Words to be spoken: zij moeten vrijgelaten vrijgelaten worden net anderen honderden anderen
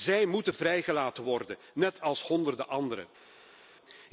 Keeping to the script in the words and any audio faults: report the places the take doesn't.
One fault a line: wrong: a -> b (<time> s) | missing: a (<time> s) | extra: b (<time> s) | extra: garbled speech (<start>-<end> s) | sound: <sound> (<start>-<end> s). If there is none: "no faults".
missing: vrijgelaten (1.2 s)
wrong: anderen -> als (2.0 s)